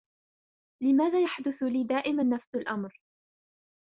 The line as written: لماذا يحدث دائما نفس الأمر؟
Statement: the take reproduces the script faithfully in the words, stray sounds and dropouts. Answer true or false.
false